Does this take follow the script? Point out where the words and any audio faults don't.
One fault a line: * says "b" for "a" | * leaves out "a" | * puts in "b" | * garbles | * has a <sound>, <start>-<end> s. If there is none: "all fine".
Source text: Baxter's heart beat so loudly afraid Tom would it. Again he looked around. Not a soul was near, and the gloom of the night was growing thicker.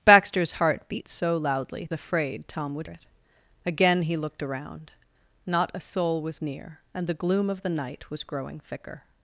all fine